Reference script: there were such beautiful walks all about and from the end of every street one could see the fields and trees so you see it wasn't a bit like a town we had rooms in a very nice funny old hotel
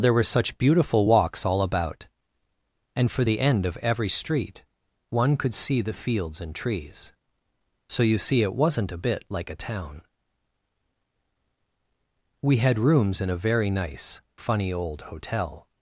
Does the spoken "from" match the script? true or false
false